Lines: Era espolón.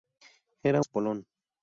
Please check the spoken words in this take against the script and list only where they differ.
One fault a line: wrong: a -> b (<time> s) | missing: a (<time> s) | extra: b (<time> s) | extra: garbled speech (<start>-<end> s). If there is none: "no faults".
no faults